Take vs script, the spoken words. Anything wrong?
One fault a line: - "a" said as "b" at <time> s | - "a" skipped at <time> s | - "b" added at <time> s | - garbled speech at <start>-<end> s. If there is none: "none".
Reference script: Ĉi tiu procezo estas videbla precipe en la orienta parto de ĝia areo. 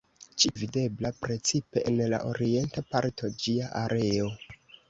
- "tiu procezo estas" skipped at 0.5 s
- "de" skipped at 3.3 s